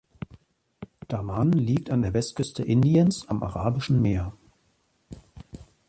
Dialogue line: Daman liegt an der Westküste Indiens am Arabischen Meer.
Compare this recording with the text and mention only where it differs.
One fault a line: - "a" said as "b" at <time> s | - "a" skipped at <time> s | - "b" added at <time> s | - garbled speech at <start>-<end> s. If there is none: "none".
none